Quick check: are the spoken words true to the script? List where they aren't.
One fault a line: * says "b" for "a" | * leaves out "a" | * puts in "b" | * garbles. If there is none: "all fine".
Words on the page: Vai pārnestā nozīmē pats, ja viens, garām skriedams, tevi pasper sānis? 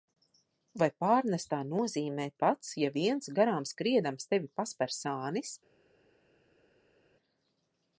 all fine